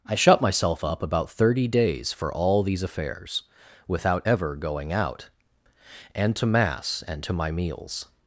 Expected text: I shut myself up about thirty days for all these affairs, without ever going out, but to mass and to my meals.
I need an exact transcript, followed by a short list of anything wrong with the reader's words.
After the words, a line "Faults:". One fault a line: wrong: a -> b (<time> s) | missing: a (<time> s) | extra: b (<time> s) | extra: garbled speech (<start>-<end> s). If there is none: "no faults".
I shut myself up about thirty days for all these affairs, without ever going out, and to mass and to my meals.
Faults:
wrong: but -> and (6.1 s)